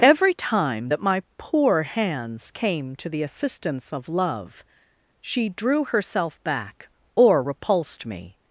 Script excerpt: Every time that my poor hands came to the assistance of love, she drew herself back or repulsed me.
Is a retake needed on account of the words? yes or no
no